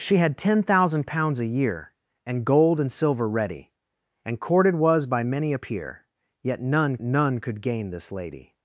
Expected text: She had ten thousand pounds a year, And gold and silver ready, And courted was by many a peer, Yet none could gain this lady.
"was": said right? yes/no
yes